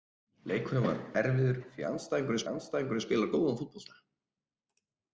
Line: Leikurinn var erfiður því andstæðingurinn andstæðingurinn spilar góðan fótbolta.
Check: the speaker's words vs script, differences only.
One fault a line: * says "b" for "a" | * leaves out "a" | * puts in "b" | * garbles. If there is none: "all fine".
all fine